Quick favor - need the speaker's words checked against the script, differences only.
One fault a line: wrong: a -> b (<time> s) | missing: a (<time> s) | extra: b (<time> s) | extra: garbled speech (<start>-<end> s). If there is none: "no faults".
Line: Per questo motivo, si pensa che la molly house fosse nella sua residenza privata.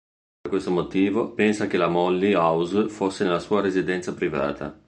missing: si (1.4 s)